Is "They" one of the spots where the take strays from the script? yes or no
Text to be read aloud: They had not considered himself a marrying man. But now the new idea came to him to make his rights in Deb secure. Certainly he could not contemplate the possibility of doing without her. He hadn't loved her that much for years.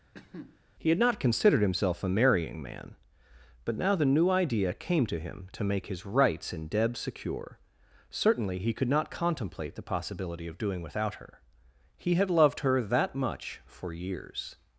yes